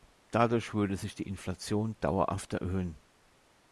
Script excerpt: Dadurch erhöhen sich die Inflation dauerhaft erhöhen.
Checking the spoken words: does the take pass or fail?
fail